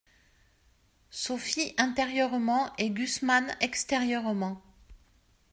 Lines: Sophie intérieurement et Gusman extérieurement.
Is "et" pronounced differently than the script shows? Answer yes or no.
no